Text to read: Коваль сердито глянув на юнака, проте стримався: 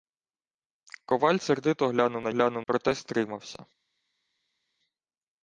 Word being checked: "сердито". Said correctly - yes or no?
yes